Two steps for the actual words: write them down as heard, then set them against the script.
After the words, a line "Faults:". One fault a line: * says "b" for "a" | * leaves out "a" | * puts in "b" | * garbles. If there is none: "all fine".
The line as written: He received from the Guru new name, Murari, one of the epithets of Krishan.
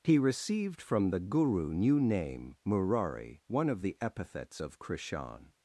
He received from the Guru new name, Murari, one of the epithets of Krishan.
Faults:
all fine